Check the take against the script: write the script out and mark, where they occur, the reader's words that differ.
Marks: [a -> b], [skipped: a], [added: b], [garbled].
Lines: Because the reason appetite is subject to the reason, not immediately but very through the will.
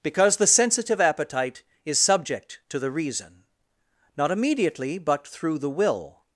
Because the [reason -> sensitive] appetite is subject to the reason, not immediately but [skipped: very] through the will.